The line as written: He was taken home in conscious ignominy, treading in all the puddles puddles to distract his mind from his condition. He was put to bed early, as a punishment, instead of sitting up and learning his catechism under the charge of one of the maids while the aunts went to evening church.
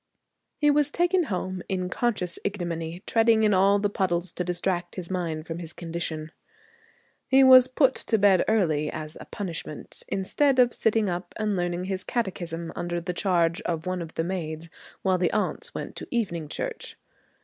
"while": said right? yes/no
yes